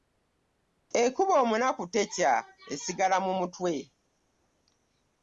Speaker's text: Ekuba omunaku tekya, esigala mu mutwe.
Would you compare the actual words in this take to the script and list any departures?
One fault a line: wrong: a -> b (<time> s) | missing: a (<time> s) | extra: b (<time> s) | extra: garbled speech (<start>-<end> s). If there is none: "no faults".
no faults